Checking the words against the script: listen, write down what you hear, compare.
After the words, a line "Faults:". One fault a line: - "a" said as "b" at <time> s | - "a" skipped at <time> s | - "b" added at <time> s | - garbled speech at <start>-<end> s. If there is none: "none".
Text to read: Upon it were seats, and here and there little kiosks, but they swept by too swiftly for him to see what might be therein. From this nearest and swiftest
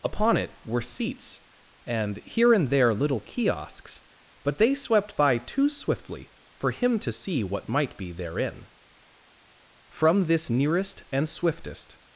Upon it were seats, and here and there little kiosks, but they swept by too swiftly for him to see what might be therein. From this nearest and swiftest
Faults:
none